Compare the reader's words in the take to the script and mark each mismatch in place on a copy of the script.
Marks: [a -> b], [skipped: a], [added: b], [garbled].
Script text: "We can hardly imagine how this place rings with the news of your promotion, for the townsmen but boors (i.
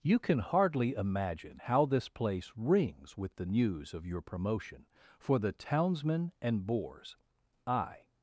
["We -> You] can hardly imagine how this place rings with the news of your promotion, for the townsmen [but -> and] boors (i.